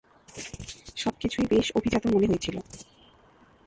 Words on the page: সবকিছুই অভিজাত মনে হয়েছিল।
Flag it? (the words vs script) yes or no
yes